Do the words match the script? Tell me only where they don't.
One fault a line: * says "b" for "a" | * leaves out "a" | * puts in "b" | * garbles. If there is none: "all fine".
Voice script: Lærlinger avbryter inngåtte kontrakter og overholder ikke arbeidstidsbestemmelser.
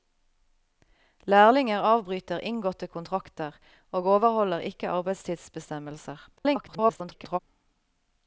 * garbles